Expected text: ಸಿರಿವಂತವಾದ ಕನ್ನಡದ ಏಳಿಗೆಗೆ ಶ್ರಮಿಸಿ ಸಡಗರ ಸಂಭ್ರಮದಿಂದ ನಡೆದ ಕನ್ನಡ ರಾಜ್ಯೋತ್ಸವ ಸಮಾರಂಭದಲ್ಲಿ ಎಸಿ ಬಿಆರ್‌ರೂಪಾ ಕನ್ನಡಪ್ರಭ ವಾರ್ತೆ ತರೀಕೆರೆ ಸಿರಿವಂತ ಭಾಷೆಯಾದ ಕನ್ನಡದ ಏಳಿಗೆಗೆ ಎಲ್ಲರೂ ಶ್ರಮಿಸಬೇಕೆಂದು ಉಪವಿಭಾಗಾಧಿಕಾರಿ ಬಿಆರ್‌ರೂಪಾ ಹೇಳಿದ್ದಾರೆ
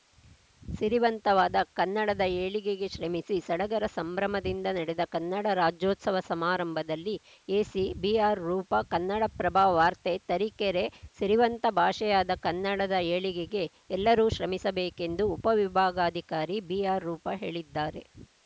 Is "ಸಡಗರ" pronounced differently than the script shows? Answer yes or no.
no